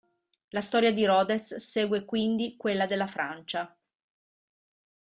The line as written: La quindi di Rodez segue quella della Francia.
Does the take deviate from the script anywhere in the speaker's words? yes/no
yes